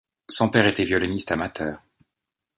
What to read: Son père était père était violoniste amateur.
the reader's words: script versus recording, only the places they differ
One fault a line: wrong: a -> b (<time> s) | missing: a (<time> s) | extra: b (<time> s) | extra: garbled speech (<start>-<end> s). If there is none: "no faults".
missing: père était (0.8 s)